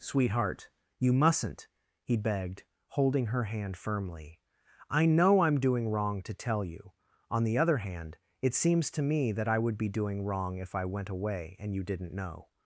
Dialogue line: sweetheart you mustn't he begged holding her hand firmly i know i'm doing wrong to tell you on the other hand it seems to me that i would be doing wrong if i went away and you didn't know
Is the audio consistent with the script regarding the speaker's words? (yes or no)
yes